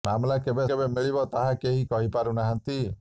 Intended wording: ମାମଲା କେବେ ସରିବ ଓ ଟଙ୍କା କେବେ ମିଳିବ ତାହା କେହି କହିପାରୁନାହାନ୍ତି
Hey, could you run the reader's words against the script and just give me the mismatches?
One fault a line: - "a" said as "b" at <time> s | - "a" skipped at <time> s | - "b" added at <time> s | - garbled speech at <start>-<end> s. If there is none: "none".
- "ସରିବ ଓ ଟଙ୍କା" skipped at 0.6 s